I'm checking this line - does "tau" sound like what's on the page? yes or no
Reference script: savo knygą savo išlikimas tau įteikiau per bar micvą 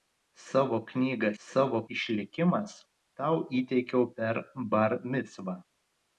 yes